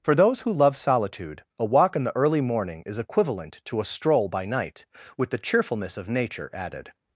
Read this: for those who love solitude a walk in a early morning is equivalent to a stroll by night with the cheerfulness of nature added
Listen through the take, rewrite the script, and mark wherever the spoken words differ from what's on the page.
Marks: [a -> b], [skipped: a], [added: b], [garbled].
for those who love solitude a walk in [a -> the] early morning is equivalent to a stroll by night with the cheerfulness of nature added